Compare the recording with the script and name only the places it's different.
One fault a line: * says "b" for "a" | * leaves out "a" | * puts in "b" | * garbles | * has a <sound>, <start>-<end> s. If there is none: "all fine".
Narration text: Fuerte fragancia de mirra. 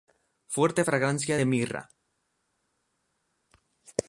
all fine